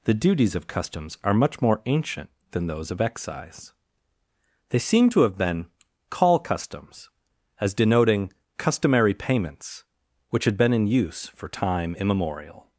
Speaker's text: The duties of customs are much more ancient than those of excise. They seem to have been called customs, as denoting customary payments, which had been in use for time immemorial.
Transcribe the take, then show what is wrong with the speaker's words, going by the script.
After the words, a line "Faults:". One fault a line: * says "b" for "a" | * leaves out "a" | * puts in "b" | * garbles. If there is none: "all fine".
The duties of customs are much more ancient than those of excise. They seem to have been call customs, as denoting customary payments, which had been in use for time immemorial.
Faults:
* says "call" for "called"